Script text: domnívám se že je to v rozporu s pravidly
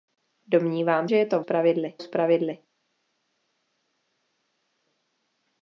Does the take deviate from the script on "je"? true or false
false